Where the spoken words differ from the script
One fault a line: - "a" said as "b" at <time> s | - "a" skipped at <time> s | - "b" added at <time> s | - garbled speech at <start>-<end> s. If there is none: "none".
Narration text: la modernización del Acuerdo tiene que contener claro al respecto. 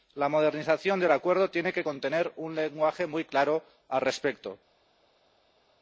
- "un lenguaje muy" added at 2.4 s